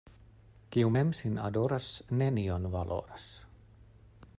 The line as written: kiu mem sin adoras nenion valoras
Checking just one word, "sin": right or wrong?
right